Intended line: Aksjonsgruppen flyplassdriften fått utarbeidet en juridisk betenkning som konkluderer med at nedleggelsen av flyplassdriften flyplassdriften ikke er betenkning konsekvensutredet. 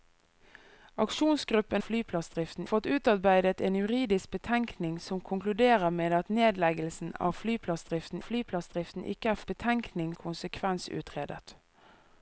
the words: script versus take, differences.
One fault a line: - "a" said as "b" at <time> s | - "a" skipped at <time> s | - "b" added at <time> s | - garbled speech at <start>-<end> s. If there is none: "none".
none